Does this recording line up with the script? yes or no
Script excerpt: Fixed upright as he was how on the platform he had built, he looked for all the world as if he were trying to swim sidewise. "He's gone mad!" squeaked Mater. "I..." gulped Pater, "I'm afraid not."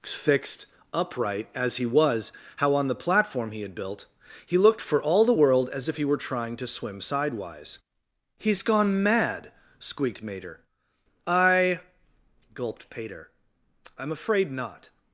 yes